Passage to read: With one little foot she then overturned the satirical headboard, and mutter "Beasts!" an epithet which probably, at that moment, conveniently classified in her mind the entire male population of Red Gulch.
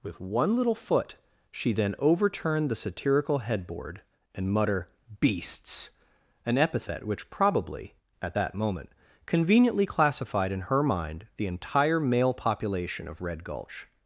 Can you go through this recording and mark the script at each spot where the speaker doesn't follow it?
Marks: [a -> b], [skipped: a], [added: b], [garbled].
With one little foot she then overturned the satirical headboard, and mutter "Beasts!" an epithet which probably, at that moment, conveniently classified in her mind the entire male population of Red Gulch.